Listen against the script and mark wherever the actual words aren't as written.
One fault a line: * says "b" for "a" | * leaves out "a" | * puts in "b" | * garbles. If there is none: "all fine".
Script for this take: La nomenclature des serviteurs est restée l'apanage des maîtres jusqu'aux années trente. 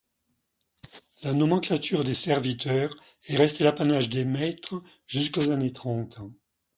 all fine